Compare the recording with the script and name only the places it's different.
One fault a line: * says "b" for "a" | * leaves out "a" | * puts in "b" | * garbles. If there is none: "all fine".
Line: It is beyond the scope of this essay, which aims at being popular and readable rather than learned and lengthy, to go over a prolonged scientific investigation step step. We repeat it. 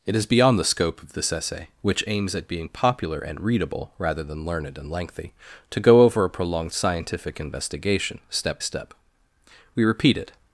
all fine